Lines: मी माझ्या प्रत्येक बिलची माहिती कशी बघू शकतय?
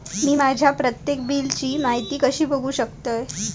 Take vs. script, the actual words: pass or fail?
pass